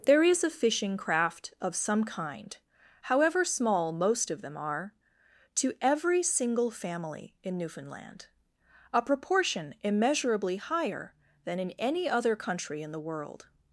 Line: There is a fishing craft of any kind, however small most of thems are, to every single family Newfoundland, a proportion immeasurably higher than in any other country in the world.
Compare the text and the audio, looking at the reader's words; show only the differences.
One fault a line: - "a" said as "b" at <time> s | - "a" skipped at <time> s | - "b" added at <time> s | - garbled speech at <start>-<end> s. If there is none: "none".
- "any" said as "some" at 1.8 s
- "thems" said as "them" at 4.4 s
- "in" added at 7.4 s